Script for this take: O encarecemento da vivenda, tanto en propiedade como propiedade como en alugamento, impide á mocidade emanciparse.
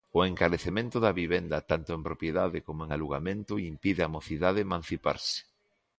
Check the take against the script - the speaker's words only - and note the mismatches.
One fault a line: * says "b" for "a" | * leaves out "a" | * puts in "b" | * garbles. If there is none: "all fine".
* leaves out "propiedade como"